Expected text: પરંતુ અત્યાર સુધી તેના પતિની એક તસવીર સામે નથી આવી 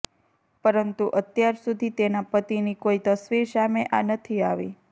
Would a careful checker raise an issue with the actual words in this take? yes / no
yes